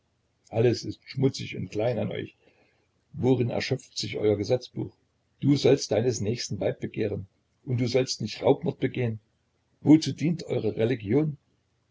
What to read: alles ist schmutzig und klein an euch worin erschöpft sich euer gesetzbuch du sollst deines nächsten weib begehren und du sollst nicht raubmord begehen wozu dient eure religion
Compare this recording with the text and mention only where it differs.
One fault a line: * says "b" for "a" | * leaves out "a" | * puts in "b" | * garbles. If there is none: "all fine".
all fine